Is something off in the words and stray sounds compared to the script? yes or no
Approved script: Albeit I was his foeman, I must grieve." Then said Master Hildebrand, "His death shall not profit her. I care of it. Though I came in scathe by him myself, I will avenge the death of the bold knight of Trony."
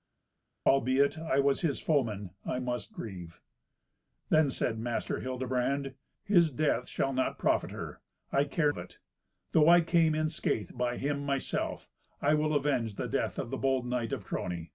no